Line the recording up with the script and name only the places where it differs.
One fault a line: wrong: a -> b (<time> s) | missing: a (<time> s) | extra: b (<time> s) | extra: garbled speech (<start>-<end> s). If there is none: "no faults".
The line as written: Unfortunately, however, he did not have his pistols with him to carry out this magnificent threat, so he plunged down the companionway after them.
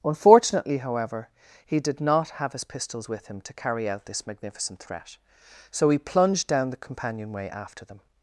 no faults